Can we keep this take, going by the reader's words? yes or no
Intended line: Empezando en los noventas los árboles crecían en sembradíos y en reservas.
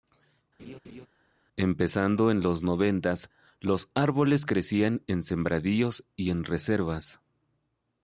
yes